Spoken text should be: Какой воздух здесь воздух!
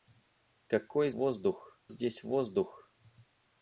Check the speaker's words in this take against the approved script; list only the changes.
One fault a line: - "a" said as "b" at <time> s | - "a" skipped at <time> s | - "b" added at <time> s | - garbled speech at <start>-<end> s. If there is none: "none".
none